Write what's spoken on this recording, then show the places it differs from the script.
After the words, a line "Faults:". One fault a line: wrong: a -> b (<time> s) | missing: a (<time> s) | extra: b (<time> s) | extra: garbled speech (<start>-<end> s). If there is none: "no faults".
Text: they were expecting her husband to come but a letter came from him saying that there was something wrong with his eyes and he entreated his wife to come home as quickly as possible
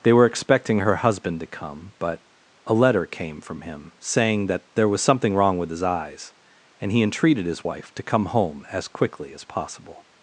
they were expecting her husband to come but a letter came from him saying that there was something wrong with his eyes and he entreated his wife to come home as quickly as possible
Faults:
no faults